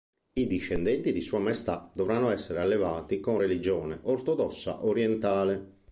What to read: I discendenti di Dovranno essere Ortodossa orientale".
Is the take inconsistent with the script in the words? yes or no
yes